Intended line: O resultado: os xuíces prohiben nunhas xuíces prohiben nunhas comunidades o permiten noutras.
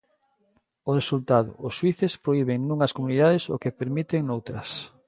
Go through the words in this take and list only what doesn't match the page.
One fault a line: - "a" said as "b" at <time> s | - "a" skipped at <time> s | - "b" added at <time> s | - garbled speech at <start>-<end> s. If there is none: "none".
- "xuíces prohiben nunhas" skipped at 3.0 s
- "que" added at 3.6 s